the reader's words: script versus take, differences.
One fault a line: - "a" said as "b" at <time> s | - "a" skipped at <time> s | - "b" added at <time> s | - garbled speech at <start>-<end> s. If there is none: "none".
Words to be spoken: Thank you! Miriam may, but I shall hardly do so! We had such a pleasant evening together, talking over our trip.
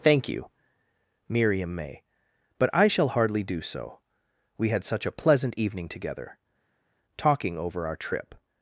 none